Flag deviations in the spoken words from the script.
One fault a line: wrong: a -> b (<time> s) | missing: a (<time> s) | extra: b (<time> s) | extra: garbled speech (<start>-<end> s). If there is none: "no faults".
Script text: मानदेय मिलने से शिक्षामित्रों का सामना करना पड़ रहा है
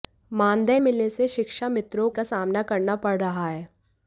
no faults